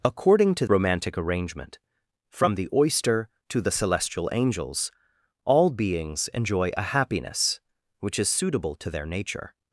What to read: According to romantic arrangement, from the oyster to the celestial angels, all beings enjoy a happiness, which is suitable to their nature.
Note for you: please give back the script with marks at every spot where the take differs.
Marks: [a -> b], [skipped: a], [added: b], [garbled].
According to romantic arrangement, from the oyster to the celestial angels, all beings enjoy a happiness, which is suitable to their nature.